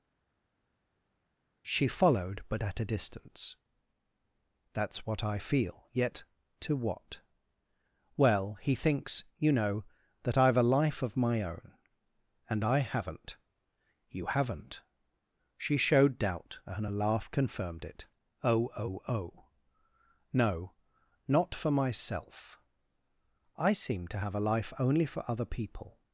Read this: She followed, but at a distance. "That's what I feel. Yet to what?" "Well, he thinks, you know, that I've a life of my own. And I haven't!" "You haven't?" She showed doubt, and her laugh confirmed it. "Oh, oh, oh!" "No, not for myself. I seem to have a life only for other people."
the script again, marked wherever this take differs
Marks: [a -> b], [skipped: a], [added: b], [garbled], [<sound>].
She followed, but at a distance. "That's what I feel. Yet to what?" "Well, he thinks, you know, that I've a life of my own. And I haven't!" "You haven't?" She showed doubt, and [her -> a] laugh confirmed it. "Oh, oh, oh!" "No, not for myself. I seem to have a life only for other people."